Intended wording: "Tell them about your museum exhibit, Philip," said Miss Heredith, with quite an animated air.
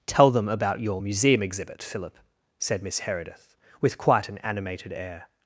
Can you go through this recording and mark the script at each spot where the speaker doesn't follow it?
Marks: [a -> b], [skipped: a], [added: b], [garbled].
"Tell them about your museum exhibit, Philip," said Miss Heredith, with quite an animated air.